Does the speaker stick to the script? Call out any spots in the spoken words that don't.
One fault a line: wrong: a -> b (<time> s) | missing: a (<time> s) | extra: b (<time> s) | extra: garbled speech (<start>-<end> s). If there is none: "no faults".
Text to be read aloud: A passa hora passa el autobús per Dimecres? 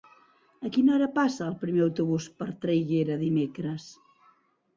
wrong: passa -> quina (0.8 s)
extra: primer (1.6 s)
extra: Traiguera (2.6 s)